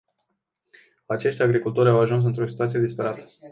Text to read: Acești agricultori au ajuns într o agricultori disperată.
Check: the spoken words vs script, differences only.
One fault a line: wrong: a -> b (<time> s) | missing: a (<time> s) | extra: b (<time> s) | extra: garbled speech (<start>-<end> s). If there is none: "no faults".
wrong: agricultori -> situație (2.5 s)